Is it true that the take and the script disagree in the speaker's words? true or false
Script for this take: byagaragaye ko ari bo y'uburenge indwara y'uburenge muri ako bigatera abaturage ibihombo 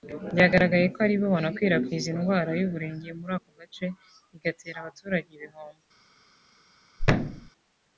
true